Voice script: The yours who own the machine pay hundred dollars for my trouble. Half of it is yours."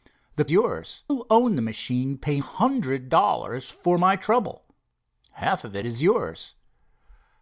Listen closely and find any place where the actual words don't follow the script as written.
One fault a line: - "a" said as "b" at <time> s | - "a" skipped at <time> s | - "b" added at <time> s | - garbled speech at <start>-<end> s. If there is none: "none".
none